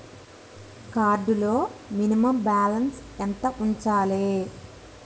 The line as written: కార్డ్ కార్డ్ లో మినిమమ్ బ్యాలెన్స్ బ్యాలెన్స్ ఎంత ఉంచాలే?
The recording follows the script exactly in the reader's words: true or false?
false